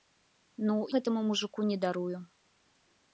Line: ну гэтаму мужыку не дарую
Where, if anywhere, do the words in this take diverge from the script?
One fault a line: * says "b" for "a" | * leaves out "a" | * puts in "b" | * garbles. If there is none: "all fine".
all fine